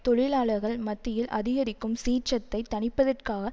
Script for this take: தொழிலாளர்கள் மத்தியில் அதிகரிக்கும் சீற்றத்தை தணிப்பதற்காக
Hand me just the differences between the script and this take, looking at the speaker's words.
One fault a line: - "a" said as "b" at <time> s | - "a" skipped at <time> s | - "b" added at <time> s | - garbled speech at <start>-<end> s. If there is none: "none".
none